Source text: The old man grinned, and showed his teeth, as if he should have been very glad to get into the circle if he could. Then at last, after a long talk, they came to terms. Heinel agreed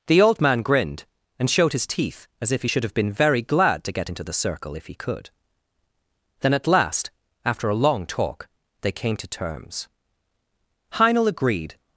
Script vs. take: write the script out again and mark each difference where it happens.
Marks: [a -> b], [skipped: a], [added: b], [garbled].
The old man grinned, and showed his teeth, as if he should have been very glad to get into the circle if he could. Then at last, after a long talk, they came to terms. Heinel agreed